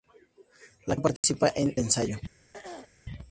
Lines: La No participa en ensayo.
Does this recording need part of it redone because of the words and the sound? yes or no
yes